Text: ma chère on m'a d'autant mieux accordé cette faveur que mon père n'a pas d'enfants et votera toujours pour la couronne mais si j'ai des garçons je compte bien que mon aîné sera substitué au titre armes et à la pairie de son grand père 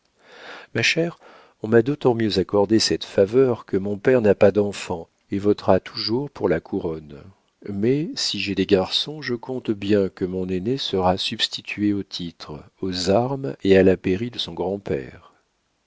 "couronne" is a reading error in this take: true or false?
false